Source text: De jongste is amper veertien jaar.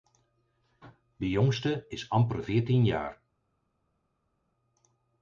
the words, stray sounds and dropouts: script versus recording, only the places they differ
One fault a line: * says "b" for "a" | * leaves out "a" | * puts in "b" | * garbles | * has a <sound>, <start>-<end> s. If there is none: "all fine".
all fine